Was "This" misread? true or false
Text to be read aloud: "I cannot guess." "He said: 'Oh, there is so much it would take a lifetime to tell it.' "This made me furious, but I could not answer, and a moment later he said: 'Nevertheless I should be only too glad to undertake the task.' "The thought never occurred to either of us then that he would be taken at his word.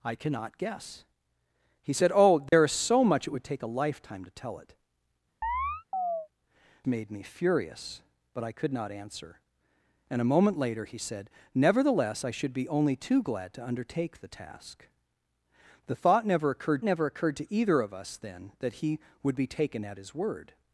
true